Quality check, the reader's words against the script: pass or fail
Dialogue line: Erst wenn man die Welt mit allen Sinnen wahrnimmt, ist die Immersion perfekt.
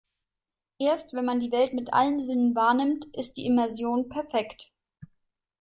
pass